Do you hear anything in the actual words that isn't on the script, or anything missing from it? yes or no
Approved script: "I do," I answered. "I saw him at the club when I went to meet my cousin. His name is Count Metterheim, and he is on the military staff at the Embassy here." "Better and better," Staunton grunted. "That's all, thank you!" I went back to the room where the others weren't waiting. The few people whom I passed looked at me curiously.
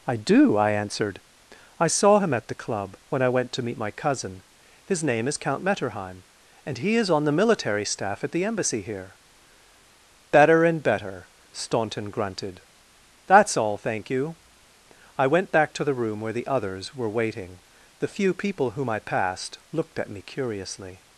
yes